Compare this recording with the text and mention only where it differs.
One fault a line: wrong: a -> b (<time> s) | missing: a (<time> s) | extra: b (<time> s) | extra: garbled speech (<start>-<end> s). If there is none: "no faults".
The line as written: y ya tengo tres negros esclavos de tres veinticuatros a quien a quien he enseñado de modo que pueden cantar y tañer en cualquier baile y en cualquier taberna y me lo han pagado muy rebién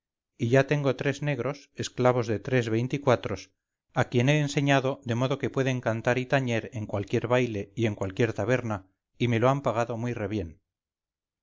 missing: a quien (4.3 s)